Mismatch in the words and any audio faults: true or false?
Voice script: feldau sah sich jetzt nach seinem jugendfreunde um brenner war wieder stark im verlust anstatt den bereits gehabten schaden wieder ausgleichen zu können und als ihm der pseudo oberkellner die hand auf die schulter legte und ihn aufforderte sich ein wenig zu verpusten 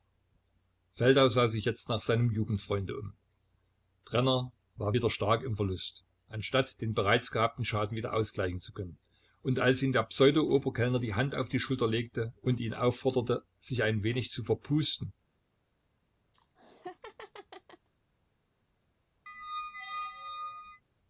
true